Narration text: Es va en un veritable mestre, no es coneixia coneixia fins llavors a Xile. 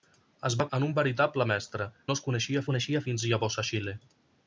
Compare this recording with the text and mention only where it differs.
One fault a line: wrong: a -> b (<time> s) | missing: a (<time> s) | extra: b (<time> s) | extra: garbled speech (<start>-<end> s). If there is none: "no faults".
no faults